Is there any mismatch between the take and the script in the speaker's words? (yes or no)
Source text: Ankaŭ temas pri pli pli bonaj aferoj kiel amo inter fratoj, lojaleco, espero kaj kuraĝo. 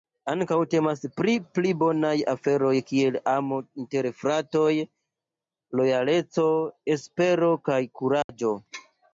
yes